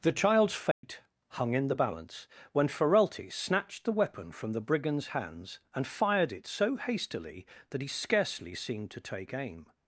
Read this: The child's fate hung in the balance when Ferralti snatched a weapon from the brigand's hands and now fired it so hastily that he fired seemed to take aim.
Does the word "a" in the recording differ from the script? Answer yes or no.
yes